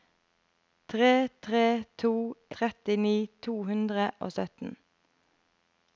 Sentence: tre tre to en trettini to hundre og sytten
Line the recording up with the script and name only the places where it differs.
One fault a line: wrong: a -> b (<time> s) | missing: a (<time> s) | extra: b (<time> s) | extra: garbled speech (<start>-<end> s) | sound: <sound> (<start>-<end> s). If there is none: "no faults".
missing: en (2.1 s)